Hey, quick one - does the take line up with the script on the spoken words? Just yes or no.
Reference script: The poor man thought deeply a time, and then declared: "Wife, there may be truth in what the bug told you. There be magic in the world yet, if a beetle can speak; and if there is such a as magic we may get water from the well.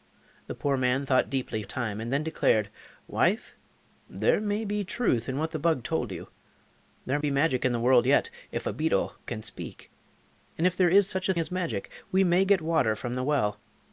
yes